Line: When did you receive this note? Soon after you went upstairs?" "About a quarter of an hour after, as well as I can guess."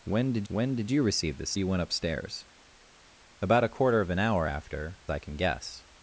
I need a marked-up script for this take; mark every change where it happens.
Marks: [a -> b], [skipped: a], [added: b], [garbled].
When did [added: when did] you receive this [skipped: note? Soon after] you went upstairs?" "About a quarter of an hour after, [skipped: as well as] I can guess."